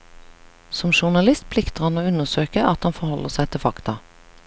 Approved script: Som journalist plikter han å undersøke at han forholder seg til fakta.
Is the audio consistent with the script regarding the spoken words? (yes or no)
yes